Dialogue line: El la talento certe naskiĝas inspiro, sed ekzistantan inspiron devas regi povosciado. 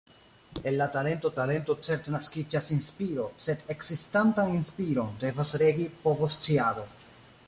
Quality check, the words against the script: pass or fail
fail